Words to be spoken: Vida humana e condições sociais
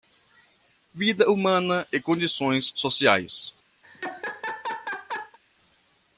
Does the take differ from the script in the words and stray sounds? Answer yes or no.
yes